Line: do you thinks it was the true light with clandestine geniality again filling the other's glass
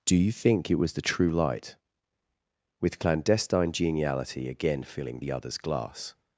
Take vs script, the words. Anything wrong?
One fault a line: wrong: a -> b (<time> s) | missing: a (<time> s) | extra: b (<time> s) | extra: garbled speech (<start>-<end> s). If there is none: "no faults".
wrong: thinks -> think (0.3 s)